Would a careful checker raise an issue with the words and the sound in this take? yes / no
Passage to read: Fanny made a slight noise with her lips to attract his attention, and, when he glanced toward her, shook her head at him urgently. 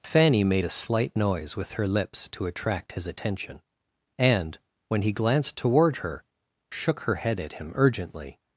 no